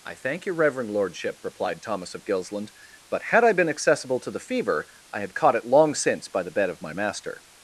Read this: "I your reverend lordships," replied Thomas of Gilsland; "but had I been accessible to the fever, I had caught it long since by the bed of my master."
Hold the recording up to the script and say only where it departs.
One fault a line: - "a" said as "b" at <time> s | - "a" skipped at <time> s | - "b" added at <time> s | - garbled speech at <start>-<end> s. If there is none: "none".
- "thank" added at 0.1 s
- "lordships" said as "lordship" at 0.9 s